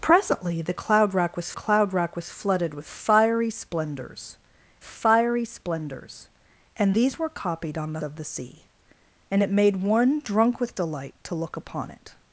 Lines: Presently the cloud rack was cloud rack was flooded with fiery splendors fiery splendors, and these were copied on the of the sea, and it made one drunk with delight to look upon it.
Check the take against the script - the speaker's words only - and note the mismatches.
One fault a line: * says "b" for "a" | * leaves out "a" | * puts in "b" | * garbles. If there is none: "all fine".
all fine